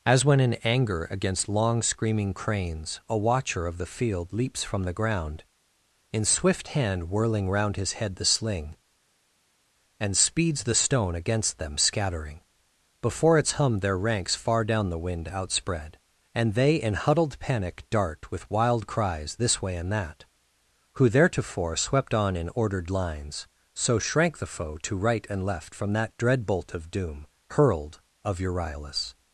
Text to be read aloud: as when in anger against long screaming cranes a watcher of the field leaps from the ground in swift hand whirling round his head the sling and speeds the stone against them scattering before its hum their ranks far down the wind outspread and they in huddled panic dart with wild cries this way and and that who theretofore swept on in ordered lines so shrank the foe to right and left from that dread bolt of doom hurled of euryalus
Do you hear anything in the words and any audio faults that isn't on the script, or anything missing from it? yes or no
yes